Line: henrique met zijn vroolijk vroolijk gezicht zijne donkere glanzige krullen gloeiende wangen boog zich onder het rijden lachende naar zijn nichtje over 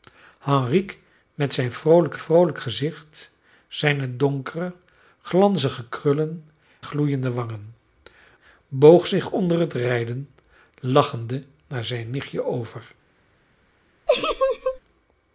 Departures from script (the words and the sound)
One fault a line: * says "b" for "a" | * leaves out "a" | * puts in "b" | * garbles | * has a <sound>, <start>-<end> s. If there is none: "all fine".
* has a laugh, 14.1-14.8 s